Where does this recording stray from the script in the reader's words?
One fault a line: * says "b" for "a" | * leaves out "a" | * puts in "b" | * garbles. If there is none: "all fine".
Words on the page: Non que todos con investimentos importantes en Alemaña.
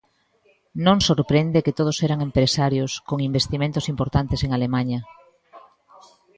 * puts in "sorprende"
* puts in "eran empresarios"